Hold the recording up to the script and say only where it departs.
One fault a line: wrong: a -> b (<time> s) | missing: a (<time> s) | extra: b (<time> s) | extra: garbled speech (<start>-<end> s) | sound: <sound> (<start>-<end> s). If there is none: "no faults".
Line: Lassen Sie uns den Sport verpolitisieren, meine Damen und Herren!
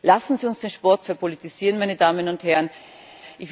no faults